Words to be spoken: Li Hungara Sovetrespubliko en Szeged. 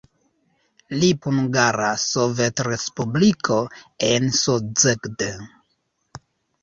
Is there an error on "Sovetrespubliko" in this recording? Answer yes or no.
no